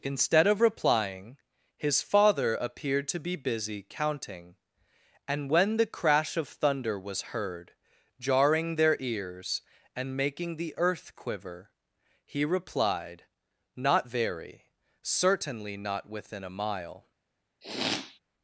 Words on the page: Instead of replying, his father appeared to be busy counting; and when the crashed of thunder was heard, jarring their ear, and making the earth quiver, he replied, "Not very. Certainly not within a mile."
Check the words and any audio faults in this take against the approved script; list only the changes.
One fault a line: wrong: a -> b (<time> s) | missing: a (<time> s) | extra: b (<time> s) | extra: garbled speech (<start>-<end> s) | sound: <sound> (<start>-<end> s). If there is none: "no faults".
wrong: crashed -> crash (5.9 s)
wrong: ear -> ears (9.0 s)
sound: sniff (17.6-18.2 s)